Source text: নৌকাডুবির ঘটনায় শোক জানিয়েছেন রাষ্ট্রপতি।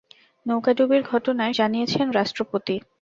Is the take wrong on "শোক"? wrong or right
wrong